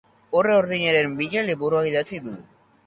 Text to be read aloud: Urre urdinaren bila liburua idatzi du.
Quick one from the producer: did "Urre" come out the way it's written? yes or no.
yes